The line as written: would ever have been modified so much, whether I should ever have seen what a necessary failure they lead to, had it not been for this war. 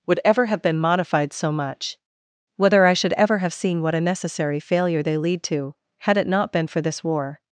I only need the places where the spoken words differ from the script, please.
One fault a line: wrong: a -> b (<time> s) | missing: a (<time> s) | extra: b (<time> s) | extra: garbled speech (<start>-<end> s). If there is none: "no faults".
no faults